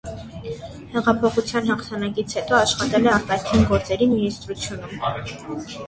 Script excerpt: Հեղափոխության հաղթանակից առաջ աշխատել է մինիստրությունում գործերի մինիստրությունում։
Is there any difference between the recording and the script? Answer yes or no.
yes